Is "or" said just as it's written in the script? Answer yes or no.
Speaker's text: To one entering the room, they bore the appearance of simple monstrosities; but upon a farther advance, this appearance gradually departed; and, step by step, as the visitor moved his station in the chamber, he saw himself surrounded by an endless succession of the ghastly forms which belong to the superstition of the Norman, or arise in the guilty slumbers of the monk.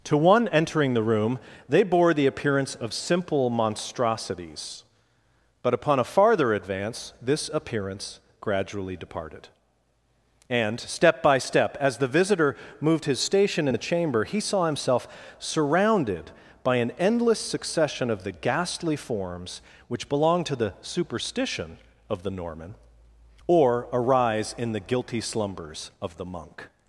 yes